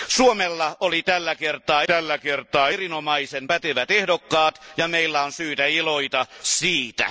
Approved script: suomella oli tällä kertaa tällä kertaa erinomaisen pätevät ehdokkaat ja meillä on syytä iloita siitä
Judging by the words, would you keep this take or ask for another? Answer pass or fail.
pass